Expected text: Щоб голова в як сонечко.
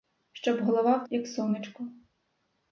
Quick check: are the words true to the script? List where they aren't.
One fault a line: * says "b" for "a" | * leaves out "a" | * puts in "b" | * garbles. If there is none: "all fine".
all fine